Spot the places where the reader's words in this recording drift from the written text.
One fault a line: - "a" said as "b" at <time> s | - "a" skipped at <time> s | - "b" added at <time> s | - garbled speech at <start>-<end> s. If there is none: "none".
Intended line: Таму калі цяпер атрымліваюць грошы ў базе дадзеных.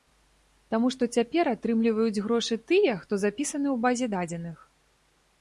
- "калі" said as "што" at 0.9 s
- "тыя хто запісаны" added at 2.7 s